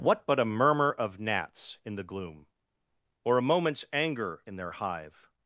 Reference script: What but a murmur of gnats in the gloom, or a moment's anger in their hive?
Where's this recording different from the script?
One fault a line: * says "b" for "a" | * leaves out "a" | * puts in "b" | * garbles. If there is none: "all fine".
all fine